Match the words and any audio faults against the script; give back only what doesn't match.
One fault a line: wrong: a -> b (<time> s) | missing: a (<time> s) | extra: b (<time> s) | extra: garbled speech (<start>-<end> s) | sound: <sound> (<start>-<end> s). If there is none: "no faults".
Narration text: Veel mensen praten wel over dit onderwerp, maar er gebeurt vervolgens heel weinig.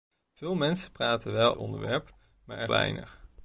missing: over dit (1.6 s)
missing: gebeurt vervolgens heel (2.7 s)